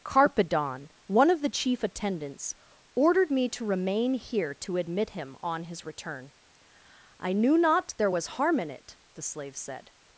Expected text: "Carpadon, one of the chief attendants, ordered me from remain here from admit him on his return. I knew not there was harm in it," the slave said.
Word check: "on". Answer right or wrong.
right